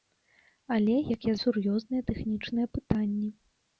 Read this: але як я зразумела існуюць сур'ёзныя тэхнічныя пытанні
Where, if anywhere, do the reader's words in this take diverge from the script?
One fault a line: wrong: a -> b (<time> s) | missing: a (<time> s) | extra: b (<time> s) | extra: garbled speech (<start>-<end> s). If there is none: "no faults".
missing: зразумела існуюць (1.3 s)